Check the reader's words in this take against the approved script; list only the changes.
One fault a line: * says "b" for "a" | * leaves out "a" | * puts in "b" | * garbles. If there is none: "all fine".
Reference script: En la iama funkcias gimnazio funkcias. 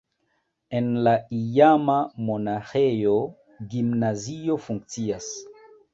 * says "monaĥejo" for "funkcias"